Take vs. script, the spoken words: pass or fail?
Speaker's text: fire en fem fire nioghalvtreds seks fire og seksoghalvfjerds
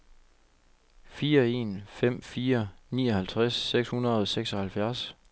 fail